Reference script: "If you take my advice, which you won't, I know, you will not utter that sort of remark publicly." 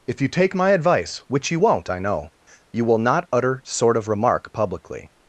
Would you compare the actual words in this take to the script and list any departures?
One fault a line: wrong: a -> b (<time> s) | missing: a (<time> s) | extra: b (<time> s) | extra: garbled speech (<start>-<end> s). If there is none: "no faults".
missing: that (3.6 s)